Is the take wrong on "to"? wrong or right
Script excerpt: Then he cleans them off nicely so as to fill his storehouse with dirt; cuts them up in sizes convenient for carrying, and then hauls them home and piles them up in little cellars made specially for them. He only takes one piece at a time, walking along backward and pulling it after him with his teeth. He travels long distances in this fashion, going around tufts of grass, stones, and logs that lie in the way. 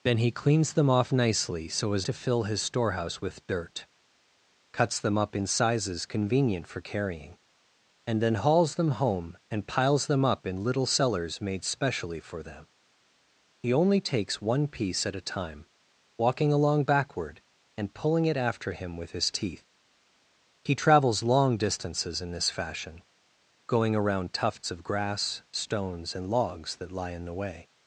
right